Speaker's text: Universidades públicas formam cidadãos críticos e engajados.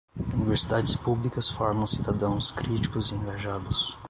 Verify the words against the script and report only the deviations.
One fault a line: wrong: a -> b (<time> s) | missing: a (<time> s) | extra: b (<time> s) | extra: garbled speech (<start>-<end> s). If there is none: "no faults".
no faults